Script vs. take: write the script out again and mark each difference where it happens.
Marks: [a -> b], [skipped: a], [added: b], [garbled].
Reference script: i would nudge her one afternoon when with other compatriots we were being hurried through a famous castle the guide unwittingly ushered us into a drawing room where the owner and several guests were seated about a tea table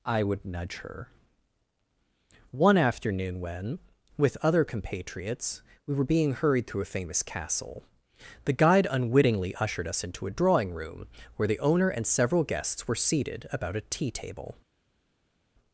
i would nudge her one afternoon when with other compatriots we were being hurried through a famous castle the guide unwittingly ushered us into a drawing room where the owner and several guests were seated about a tea table